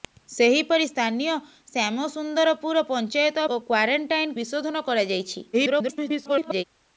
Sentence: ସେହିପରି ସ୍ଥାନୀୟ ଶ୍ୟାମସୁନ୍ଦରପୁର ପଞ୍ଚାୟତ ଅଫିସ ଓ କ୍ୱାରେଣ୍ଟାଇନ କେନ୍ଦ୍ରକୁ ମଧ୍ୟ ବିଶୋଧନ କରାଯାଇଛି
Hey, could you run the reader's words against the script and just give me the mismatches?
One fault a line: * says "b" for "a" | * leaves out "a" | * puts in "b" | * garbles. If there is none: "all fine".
* leaves out "ଅଫିସ"
* leaves out "କେନ୍ଦ୍ରକୁ ମଧ୍ୟ"
* garbles